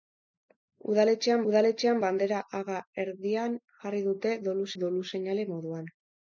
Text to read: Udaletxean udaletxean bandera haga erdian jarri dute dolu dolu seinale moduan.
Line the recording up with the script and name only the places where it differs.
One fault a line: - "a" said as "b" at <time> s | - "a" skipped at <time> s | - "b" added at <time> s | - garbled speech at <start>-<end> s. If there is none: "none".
none